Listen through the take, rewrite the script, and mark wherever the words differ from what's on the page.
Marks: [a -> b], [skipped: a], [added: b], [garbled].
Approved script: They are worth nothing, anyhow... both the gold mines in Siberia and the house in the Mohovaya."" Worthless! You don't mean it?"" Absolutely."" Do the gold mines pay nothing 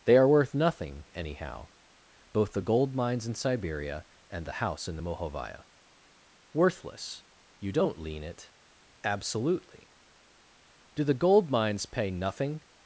They are worth nothing, anyhow... both the gold mines in Siberia and the house in the Mohovaya."" Worthless! You don't [mean -> lean] it?"" Absolutely."" Do the gold mines pay nothing